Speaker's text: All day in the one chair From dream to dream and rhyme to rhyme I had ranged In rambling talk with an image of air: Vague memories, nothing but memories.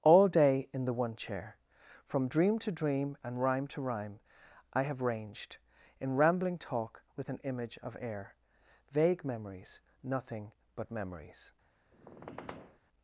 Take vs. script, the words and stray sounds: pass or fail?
fail